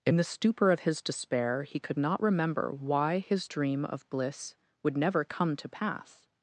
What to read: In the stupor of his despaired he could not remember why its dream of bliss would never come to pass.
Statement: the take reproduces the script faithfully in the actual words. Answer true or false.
false